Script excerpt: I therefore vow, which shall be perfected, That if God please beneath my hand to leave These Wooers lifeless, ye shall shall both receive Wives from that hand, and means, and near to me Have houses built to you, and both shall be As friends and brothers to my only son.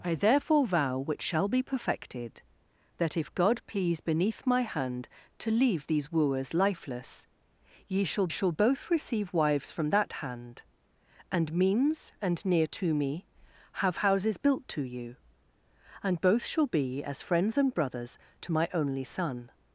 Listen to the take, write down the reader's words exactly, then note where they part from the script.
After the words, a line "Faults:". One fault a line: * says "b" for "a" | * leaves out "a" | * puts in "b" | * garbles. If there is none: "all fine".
I therefore vow, which shall be perfected, That if God please beneath my hand to leave These Wooers lifeless, ye shall shall both receive Wives from that hand, and means, and near to me Have houses built to you, and both shall be As friends and brothers to my only son.
Faults:
all fine